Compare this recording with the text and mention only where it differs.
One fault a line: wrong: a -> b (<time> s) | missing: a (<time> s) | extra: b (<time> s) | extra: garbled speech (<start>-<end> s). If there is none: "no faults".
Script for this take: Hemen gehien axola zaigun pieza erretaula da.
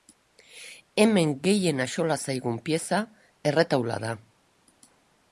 no faults